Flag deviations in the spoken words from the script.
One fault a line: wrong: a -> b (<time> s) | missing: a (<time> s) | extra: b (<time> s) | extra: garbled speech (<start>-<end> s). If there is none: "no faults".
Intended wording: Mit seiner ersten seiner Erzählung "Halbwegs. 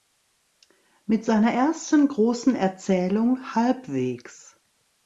wrong: seiner -> großen (2.1 s)